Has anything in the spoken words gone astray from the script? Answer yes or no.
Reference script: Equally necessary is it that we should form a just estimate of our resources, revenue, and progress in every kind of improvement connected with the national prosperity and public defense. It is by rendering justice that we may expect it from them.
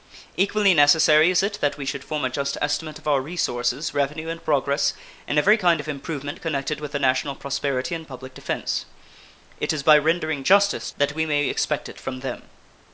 no